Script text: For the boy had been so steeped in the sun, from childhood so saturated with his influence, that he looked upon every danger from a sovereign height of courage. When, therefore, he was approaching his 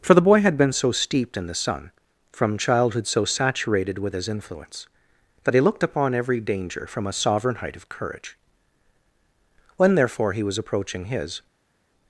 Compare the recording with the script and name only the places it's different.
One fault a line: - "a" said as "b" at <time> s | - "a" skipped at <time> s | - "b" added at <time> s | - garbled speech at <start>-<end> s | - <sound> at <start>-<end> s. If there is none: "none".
none